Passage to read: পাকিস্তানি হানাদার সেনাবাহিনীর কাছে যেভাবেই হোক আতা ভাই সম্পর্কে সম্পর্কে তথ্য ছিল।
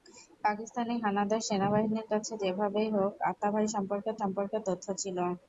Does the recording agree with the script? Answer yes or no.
yes